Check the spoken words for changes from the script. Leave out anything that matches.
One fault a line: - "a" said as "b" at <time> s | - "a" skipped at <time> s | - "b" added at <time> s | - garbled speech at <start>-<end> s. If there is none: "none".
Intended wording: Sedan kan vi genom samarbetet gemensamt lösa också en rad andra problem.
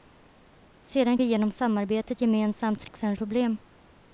- "kan" skipped at 1.2 s
- "lösa" skipped at 2.9 s
- "rad andra" skipped at 3.2 s